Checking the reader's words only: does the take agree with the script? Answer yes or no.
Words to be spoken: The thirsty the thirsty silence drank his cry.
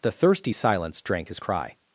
no